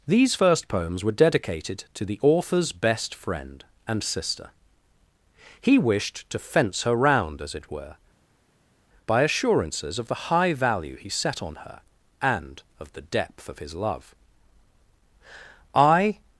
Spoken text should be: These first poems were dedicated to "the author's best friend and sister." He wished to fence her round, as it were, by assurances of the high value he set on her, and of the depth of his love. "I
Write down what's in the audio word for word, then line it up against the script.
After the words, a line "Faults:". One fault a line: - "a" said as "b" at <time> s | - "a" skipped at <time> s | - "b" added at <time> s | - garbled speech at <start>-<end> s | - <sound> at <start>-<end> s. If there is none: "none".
These first poems were dedicated to "the author's best friend and sister." He wished to fence her round, as it were, by assurances of the high value he set on her, and of the depth of his love. "I
Faults:
none